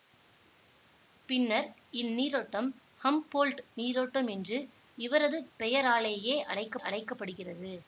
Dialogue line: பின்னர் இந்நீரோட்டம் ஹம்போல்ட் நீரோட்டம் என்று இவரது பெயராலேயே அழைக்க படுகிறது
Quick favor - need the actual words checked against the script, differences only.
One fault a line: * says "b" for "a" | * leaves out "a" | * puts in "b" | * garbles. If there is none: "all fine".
* puts in "அழைக்க"